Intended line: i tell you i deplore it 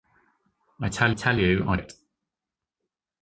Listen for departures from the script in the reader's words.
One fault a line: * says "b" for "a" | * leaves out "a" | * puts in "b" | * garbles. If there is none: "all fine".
* puts in "tell"
* leaves out "deplore"